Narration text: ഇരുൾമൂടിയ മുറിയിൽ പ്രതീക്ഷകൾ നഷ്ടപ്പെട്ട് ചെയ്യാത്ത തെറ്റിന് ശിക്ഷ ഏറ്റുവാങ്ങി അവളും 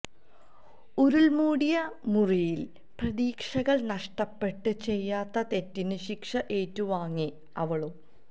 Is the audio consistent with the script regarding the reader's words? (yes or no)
yes